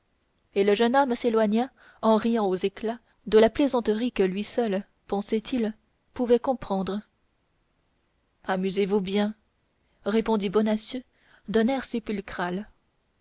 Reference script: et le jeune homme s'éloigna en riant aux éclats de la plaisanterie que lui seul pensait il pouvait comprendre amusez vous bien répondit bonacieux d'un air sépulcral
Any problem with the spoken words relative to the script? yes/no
no